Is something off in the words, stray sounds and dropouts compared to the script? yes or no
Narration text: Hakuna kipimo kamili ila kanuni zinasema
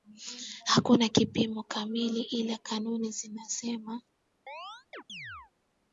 yes